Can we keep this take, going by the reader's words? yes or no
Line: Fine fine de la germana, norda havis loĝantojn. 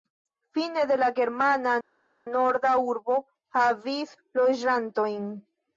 no